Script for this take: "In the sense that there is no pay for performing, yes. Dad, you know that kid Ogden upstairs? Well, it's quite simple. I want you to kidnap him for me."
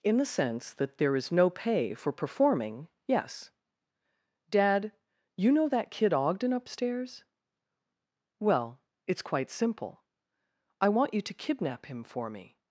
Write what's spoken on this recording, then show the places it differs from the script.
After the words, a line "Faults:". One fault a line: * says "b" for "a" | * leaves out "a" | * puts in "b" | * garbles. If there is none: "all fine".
"In the sense that there is no pay for performing, yes. Dad, you know that kid Ogden upstairs? Well, it's quite simple. I want you to kidnap him for me."
Faults:
all fine